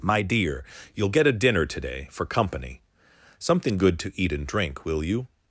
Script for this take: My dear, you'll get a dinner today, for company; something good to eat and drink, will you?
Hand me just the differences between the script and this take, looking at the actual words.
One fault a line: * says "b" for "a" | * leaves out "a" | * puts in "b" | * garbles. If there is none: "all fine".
all fine